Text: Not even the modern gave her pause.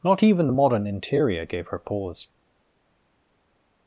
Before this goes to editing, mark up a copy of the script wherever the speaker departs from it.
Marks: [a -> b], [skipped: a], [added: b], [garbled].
Not even the modern [added: interior] gave her pause.